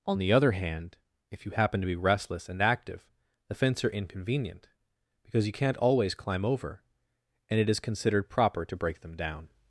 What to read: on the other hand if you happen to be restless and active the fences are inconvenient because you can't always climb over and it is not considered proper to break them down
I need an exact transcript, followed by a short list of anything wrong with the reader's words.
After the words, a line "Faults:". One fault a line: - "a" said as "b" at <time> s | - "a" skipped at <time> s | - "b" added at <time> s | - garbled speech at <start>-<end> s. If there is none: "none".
on the other hand if you happen to be restless and active the fence are inconvenient because you can't always climb over and it is considered proper to break them down
Faults:
- "fences" said as "fence" at 3.5 s
- "not" skipped at 7.8 s